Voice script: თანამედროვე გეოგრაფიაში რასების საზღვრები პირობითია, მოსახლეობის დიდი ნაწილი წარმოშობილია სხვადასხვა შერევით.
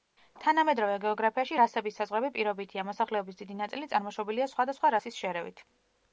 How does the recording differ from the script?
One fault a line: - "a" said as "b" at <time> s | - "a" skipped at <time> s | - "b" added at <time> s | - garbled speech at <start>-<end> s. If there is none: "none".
- "რასის" added at 5.0 s